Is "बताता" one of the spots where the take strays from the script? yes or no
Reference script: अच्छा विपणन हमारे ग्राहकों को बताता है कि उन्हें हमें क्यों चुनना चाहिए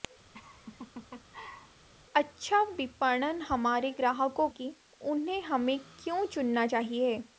yes